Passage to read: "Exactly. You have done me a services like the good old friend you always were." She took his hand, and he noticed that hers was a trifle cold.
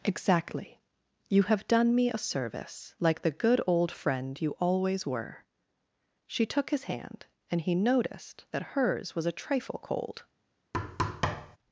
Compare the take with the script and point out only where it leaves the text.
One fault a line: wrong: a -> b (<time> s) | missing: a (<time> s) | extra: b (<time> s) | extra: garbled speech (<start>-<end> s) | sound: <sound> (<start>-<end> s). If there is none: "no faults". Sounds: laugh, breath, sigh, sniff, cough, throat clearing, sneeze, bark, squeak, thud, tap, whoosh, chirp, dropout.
wrong: services -> service (2.2 s)
sound: thud (10.7-11.6 s)